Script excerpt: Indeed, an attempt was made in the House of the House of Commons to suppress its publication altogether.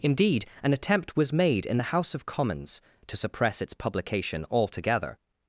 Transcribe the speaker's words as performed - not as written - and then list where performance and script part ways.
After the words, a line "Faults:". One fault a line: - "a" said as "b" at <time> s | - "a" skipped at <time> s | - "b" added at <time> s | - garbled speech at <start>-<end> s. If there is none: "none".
Indeed, an attempt was made in the House of Commons to suppress its publication altogether.
Faults:
- "the House of" skipped at 2.3 s